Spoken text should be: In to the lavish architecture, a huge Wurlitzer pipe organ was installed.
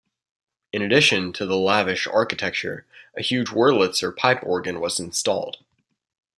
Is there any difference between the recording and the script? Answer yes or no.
yes